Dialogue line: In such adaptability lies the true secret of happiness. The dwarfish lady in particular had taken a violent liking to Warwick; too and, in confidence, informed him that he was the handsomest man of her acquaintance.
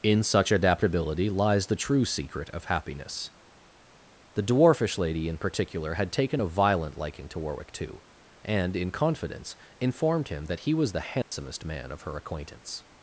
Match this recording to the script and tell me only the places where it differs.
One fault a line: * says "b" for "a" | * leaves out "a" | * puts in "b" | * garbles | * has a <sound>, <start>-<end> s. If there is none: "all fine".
* has a dropout, 11.2-11.3 s